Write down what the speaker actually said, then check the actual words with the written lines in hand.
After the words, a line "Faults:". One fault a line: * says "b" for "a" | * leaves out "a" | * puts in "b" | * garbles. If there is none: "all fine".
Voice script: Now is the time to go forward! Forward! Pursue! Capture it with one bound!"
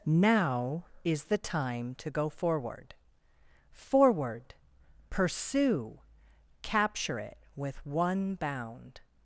Now is the time to go forward! Forward! Pursue! Capture it with one bound!"
Faults:
all fine